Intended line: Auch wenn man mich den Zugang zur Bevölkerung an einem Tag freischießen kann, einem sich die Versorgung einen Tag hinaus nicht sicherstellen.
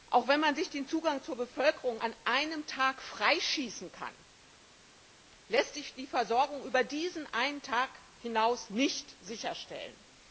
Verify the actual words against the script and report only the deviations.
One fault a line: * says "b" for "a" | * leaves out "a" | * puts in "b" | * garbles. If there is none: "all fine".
* says "sich" for "mich"
* says "lässt" for "einem"
* puts in "über diesen"